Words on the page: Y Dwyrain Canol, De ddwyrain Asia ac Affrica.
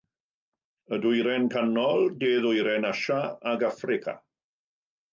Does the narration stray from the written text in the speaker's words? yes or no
no